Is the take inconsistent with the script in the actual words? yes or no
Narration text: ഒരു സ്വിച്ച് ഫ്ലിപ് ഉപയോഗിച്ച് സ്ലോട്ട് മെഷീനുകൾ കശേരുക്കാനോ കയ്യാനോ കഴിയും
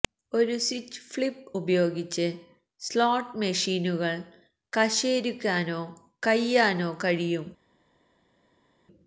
no